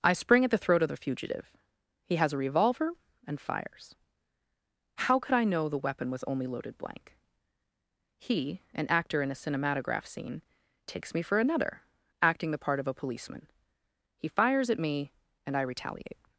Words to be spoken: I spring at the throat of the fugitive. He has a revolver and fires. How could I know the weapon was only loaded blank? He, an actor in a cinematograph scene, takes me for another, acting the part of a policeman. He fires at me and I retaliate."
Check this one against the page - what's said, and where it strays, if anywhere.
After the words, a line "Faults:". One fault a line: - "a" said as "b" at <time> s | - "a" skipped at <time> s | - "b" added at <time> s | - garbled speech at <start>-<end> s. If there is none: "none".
I spring at the throat of the fugitive. He has a revolver and fires. How could I know the weapon was only loaded blank? He, an actor in a cinematograph scene, takes me for another, acting the part of a policeman. He fires at me and I retaliate."
Faults:
none